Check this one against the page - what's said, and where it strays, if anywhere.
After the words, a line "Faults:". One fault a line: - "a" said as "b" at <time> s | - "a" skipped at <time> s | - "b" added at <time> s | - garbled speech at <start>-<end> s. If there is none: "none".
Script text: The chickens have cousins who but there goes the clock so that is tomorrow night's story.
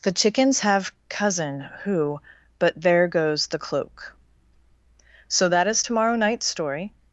The chickens have cousin who but there goes the cloak so that is tomorrow night's story.
Faults:
- "cousins" said as "cousin" at 1.1 s
- "clock" said as "cloak" at 3.6 s